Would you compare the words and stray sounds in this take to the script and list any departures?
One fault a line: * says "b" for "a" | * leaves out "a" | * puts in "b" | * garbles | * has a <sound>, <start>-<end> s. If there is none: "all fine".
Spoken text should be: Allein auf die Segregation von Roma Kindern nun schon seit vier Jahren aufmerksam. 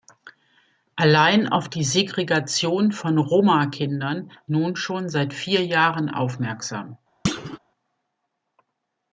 * has a thud, 7.2-7.6 s